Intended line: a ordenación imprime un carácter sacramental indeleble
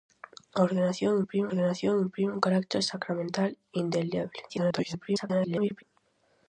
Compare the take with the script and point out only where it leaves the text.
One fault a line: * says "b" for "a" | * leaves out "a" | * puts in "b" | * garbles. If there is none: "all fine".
* puts in "ordenación imprime"
* garbles